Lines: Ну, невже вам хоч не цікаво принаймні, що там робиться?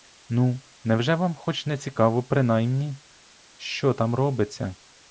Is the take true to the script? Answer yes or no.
yes